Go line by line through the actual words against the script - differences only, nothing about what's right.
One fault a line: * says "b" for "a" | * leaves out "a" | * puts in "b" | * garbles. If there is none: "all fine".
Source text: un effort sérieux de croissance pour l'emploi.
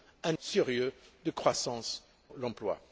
* leaves out "effort"
* leaves out "pour"